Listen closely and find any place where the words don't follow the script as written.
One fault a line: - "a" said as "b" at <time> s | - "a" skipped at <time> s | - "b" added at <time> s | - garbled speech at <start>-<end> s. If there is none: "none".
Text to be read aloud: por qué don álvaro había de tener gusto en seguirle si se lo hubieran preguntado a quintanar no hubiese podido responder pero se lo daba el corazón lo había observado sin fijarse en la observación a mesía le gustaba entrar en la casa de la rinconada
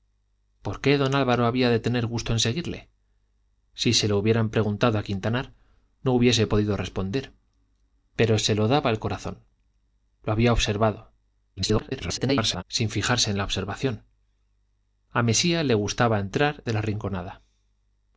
- garbled speech at 11.6-12.6 s
- "en la casa" skipped at 16.6 s